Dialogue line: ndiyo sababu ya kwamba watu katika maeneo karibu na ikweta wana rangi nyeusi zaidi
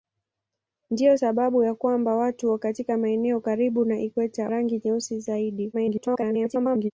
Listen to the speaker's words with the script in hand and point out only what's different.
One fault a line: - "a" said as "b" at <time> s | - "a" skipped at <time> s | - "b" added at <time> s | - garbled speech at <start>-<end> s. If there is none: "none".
- "wana" skipped at 4.5 s
- garbled speech at 5.7-6.9 s